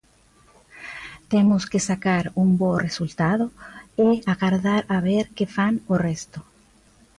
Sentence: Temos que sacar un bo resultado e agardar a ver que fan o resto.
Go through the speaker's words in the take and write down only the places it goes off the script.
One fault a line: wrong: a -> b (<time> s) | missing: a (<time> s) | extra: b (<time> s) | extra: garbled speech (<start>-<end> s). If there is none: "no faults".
no faults